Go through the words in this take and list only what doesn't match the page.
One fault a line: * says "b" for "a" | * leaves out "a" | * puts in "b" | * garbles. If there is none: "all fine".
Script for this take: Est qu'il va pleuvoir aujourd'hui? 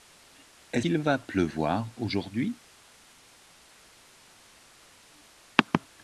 all fine